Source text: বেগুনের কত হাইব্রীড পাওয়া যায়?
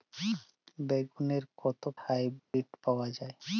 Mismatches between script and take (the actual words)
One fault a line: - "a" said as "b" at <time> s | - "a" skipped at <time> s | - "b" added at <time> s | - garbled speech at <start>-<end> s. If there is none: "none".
none